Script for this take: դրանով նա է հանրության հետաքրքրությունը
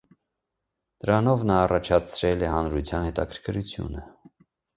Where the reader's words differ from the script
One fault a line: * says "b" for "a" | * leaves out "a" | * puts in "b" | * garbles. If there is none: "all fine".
* puts in "առաջացրել"